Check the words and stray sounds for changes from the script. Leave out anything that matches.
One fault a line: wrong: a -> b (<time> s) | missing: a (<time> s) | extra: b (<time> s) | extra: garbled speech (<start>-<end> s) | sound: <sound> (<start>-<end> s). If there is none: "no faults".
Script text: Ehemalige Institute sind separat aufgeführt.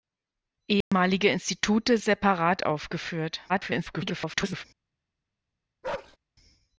sound: dropout (0.8-0.9 s)
missing: sind (2.0 s)
extra: garbled speech (3.5-4.6 s)
sound: bark (5.8-6.2 s)